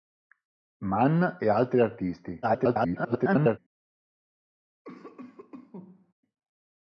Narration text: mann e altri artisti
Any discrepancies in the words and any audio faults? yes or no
yes